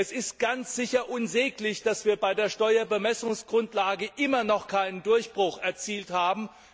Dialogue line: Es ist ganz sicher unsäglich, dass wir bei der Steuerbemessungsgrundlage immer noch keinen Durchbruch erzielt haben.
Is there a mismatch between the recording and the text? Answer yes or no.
no